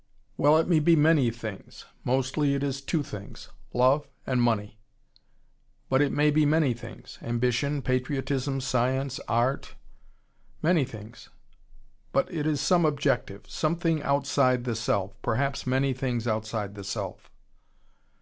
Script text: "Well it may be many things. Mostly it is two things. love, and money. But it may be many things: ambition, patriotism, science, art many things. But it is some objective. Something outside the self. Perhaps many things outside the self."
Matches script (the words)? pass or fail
pass